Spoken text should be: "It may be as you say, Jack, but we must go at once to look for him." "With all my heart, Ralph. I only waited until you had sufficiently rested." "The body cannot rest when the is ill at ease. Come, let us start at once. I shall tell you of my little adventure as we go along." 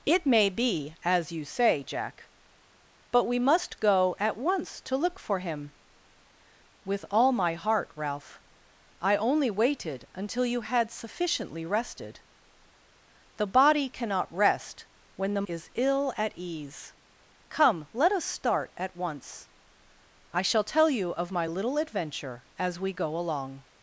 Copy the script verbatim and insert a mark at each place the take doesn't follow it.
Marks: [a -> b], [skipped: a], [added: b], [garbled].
"It may be as you say, Jack, but we must go at once to look for him." "With all my heart, Ralph. I only waited until you had sufficiently rested." "The body cannot rest when the is ill at ease. Come, let us start at once. I shall tell you of my little adventure as we go along."